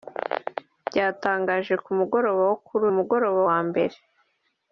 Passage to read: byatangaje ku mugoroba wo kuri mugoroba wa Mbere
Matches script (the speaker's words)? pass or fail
pass